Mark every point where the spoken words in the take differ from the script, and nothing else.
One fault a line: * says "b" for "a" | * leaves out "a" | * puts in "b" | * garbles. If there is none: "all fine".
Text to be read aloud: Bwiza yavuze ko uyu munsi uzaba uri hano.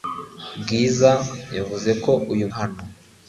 * leaves out "munsi uzaba uri"